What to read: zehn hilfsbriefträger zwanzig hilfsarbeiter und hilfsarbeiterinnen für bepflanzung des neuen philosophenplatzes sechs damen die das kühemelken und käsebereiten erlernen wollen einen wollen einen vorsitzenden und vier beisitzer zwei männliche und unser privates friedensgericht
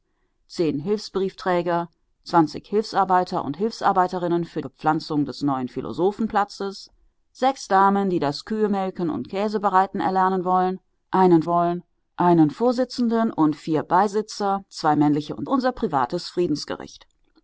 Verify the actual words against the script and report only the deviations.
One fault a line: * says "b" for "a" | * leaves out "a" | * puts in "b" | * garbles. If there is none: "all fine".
all fine